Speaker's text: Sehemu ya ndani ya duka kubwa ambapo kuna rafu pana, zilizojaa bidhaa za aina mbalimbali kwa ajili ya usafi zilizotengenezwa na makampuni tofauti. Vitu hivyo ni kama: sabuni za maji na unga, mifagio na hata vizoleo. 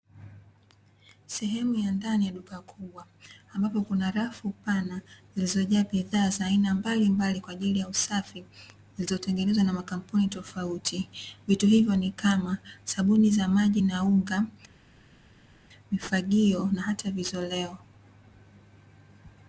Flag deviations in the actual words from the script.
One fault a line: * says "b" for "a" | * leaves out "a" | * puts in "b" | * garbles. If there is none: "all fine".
all fine